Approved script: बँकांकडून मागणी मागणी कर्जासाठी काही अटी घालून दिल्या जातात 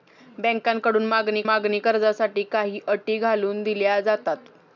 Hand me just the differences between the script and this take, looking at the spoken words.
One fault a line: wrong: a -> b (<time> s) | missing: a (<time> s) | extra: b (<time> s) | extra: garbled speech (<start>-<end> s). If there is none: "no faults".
no faults